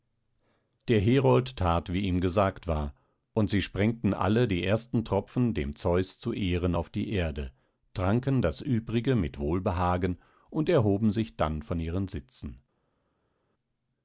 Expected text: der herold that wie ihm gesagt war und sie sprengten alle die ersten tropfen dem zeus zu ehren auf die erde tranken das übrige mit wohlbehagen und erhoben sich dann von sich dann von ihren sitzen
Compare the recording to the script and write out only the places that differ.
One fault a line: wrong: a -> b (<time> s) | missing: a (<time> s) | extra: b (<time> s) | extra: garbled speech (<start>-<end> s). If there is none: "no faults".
missing: sich dann von (11.8 s)